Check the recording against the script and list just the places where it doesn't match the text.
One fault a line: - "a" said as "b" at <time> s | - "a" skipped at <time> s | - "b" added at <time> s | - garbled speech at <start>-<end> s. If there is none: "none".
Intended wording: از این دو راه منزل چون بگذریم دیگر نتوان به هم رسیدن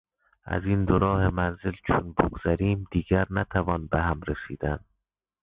none